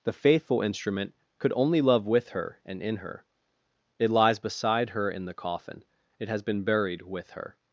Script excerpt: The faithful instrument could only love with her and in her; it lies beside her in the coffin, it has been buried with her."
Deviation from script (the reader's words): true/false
false